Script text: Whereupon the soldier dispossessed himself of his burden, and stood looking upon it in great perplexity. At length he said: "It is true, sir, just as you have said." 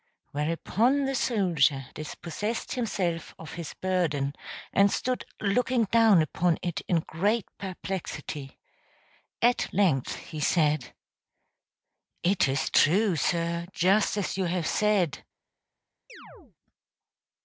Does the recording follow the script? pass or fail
fail